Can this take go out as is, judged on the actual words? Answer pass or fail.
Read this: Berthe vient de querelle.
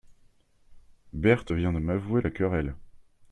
fail